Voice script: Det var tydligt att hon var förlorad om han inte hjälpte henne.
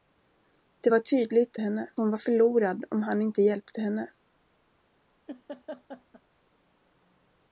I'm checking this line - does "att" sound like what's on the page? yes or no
no